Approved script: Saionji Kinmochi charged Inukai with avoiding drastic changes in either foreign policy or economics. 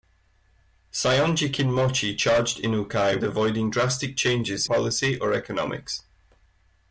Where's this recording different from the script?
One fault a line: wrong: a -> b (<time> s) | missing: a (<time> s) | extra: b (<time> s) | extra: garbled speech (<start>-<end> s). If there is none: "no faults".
missing: with (3.2 s)
missing: in either foreign (4.7 s)